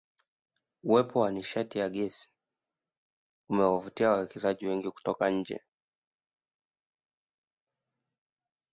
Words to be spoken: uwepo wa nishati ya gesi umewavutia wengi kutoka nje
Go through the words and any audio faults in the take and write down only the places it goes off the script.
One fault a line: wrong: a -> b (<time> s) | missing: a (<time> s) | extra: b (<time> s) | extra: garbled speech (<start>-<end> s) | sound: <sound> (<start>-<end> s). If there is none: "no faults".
extra: wawekezaji (4.1 s)